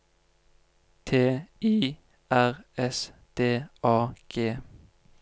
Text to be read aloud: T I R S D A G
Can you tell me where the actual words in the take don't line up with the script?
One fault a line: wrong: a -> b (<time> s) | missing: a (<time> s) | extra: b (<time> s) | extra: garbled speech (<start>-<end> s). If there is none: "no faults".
no faults